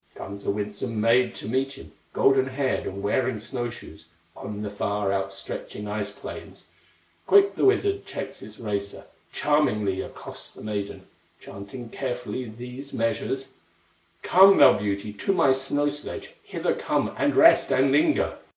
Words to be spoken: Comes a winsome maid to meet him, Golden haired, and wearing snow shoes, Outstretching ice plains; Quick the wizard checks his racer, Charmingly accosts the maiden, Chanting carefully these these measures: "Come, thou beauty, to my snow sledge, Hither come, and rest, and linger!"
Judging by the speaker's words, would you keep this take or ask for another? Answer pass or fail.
fail